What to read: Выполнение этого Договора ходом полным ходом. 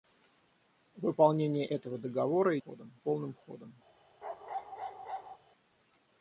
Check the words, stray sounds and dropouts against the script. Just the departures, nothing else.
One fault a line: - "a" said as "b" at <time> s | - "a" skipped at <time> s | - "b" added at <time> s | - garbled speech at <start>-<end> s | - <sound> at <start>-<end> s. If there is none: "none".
- bark at 4.2-5.4 s